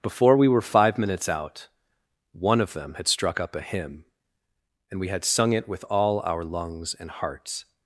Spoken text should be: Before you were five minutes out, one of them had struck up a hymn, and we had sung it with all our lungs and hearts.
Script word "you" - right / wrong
wrong